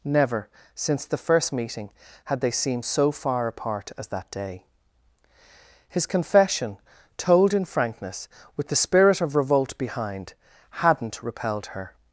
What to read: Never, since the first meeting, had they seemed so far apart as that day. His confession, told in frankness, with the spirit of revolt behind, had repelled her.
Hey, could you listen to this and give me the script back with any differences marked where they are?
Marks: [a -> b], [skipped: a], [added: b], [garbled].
Never, since the first meeting, had they seemed so far apart as that day. His confession, told in frankness, with the spirit of revolt behind, [had -> hadn't] repelled her.